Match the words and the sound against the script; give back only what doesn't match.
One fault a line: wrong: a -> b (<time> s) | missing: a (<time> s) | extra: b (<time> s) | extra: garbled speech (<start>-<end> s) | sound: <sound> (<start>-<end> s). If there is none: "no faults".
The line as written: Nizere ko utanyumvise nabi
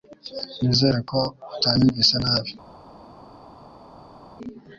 no faults